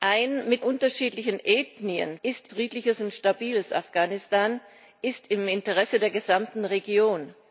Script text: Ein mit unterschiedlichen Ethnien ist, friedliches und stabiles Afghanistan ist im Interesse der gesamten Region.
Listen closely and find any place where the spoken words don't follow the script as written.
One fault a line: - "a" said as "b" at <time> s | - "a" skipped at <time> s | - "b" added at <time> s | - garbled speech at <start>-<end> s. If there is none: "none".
none